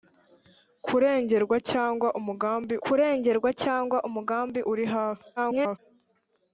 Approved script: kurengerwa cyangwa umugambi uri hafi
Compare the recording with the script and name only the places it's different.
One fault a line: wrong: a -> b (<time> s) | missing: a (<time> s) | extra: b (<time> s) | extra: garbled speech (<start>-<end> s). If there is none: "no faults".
extra: kurengerwa cyangwa umugambi (2.8 s)
extra: garbled speech (5.4-5.8 s)